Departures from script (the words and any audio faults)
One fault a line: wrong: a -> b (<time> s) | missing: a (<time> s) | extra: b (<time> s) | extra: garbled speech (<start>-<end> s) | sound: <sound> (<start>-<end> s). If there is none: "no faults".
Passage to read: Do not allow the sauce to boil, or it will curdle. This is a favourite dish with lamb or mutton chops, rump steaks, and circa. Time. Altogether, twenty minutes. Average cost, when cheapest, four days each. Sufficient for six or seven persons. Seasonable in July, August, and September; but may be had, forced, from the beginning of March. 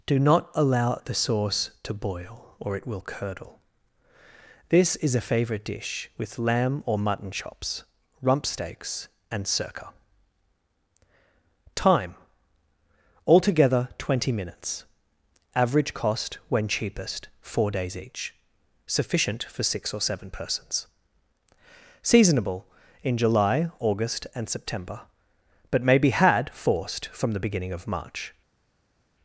no faults